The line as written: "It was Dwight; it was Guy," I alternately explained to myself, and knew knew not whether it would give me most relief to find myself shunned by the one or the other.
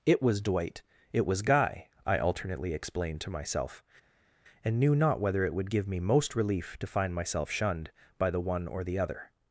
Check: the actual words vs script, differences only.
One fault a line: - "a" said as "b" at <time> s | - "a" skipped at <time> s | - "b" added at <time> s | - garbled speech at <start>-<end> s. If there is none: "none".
- "knew" skipped at 4.9 s